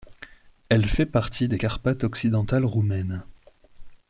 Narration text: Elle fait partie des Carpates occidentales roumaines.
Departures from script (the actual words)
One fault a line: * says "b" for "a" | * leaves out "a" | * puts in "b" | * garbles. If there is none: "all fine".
all fine